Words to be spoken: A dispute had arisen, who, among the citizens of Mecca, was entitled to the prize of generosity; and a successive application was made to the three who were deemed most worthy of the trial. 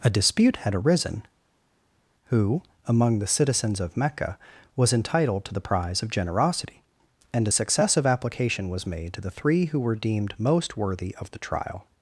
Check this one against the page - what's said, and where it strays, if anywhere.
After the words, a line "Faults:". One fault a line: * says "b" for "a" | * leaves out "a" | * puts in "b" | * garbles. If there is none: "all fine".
A dispute had arisen, who, among the citizens of Mecca, was entitled to the prize of generosity; and a successive application was made to the three who were deemed most worthy of the trial.
Faults:
all fine